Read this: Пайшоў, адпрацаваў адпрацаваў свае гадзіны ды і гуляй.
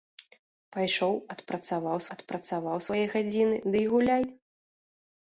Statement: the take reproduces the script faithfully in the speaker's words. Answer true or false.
true